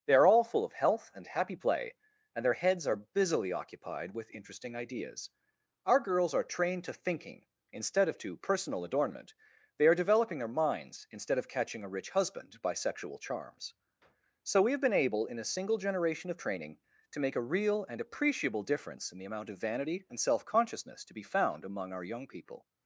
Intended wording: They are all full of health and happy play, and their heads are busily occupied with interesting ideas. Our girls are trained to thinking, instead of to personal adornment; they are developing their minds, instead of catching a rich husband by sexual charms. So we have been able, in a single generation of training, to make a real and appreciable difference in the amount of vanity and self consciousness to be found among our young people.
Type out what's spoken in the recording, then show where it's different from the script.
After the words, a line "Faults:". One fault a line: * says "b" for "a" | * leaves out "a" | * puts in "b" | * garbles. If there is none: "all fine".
They are all full of health and happy play, and their heads are busily occupied with interesting ideas. Our girls are trained to thinking, instead of to personal adornment; they are developing their minds, instead of catching a rich husband by sexual charms. So we have been able, in a single generation of training, to make a real and appreciable difference in the amount of vanity and self consciousness to be found among our young people.
Faults:
all fine